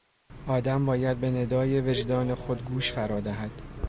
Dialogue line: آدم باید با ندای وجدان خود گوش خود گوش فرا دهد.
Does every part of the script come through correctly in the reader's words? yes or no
no